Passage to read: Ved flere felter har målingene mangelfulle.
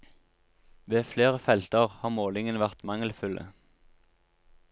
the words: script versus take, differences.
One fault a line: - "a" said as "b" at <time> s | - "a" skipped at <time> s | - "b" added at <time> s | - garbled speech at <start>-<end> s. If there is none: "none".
- "vært" added at 2.6 s